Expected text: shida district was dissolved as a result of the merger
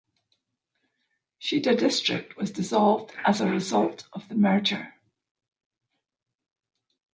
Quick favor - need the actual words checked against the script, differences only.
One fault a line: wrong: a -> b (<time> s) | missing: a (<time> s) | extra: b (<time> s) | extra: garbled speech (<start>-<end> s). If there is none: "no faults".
no faults